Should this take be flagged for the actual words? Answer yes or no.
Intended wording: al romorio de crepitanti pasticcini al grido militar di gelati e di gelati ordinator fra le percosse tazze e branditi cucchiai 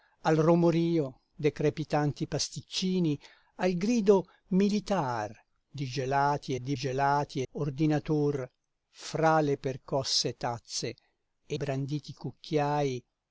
no